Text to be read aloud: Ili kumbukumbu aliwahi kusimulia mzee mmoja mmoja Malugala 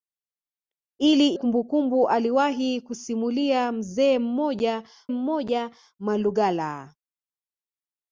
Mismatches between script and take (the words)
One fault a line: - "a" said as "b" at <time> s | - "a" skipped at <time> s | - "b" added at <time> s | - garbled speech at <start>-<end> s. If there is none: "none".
none